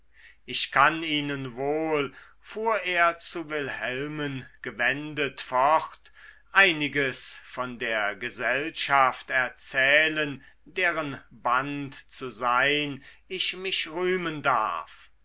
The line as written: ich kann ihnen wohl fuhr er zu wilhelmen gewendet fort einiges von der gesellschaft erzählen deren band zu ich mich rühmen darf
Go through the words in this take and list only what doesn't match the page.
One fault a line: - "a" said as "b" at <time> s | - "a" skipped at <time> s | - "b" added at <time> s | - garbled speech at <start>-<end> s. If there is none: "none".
- "sein" added at 12.3 s